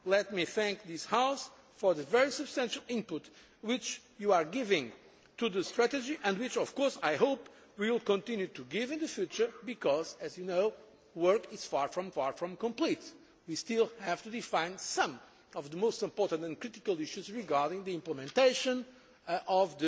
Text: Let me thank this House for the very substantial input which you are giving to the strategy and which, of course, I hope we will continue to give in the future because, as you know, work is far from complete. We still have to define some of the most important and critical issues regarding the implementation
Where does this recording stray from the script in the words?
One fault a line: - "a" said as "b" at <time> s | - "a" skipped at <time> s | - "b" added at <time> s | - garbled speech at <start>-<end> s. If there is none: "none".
- "far from" added at 12.1 s